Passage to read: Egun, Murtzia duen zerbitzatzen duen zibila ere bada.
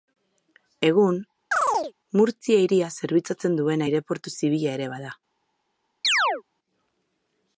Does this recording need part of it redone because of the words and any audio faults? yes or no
yes